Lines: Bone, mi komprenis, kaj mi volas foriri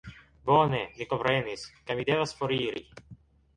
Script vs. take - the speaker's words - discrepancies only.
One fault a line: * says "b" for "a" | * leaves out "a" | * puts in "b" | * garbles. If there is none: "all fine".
* says "devas" for "volas"